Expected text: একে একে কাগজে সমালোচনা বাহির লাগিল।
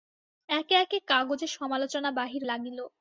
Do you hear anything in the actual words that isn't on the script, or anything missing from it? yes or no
no